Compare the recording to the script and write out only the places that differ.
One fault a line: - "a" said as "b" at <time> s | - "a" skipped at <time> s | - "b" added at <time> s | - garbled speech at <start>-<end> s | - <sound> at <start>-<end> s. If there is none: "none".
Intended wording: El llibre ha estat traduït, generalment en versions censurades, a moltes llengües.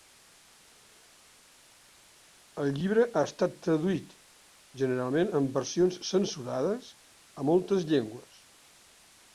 none